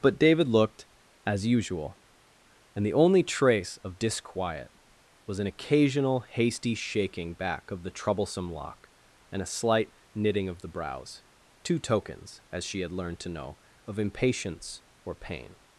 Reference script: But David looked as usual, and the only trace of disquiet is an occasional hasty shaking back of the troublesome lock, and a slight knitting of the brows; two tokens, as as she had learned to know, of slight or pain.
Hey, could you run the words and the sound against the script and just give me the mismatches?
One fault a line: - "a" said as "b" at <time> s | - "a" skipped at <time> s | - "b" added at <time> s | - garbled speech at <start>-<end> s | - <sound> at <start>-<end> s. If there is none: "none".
- "is" said as "was" at 5.3 s
- "as" skipped at 12.6 s
- "slight" said as "impatience" at 14.0 s